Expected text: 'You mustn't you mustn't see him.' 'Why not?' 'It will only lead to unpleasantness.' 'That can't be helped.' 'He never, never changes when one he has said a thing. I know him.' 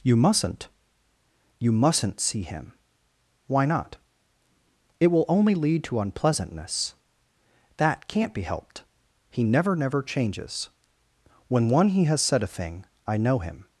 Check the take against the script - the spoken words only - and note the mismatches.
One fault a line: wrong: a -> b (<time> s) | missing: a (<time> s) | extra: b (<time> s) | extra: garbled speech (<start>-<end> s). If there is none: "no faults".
no faults